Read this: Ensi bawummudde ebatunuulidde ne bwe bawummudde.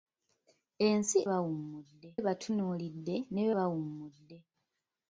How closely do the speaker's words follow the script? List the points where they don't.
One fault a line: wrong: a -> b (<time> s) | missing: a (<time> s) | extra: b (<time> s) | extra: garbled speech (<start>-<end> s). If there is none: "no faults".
no faults